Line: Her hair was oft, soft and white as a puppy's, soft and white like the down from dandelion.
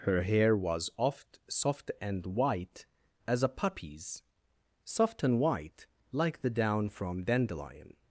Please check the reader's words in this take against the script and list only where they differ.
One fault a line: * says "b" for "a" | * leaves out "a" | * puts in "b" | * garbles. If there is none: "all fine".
all fine